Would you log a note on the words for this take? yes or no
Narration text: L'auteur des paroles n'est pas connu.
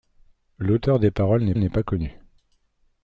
yes